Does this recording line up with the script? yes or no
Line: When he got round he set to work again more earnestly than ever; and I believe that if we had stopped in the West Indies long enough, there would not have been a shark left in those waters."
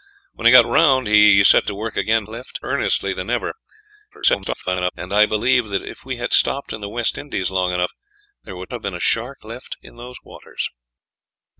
no